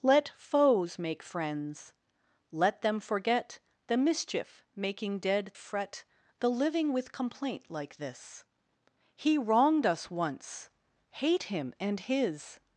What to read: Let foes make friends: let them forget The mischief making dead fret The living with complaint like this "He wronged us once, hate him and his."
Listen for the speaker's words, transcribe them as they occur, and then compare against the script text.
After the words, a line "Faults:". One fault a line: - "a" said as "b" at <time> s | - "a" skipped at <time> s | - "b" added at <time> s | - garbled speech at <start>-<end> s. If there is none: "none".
Let foes make friends: let them forget The mischief making dead fret The living with complaint like this "He wronged us once, hate him and his."
Faults:
none